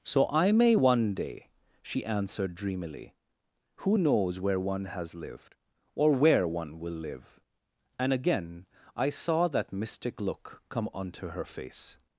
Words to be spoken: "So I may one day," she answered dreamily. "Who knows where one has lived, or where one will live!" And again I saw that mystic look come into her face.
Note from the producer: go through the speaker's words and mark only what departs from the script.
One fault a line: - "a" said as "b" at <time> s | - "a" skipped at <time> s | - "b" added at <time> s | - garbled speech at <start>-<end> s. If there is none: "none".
- "into" said as "onto" at 10.9 s